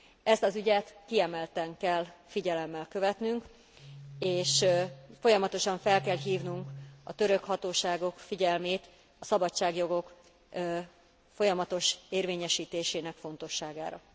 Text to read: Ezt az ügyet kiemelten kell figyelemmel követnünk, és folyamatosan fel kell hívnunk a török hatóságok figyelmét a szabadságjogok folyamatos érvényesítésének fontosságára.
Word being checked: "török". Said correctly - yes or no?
yes